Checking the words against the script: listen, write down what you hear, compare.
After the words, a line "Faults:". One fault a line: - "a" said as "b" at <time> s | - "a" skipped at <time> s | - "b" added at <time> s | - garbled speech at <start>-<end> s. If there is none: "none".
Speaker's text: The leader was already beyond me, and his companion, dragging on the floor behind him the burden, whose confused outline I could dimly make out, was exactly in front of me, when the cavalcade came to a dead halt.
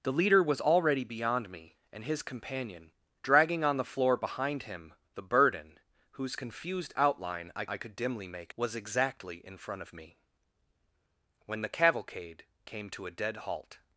The leader was already beyond me, and his companion, dragging on the floor behind him the burden, whose confused outline I I could dimly make was exactly in front of me, when the cavalcade came to a dead halt.
Faults:
- "I" added at 7.6 s
- "out" skipped at 8.5 s